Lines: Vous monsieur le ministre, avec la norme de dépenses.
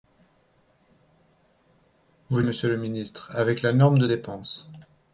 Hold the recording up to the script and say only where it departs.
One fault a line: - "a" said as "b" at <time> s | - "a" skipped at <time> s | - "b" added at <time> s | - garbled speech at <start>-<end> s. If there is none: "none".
none